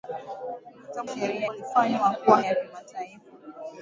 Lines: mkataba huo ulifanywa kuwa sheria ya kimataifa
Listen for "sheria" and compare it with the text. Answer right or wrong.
wrong